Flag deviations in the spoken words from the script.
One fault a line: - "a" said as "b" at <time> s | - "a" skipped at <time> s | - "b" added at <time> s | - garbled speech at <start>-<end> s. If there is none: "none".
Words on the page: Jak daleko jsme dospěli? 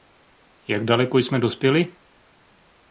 none